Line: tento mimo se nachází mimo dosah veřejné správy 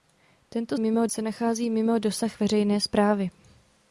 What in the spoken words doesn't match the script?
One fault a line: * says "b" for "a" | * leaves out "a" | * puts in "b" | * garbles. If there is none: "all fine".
all fine